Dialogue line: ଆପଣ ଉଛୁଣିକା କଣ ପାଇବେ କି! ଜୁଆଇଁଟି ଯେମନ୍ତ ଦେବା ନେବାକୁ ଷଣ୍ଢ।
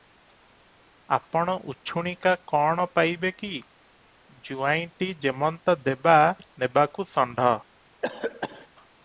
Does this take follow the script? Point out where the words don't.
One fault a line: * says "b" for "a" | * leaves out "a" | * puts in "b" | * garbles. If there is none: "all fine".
all fine